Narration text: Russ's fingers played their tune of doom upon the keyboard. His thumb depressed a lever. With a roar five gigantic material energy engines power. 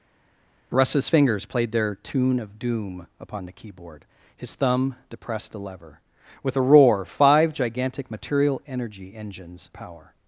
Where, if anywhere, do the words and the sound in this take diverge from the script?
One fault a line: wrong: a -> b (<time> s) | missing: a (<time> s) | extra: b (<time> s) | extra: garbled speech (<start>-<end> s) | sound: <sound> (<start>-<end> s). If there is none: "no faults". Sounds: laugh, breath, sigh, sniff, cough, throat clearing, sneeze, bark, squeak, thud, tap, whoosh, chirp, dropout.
no faults